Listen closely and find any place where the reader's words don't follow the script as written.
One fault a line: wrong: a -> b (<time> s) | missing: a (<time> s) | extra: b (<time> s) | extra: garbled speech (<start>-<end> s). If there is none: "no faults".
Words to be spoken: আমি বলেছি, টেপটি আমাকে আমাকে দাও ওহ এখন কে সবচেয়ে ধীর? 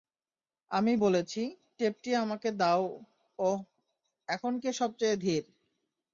missing: আমাকে (2.5 s)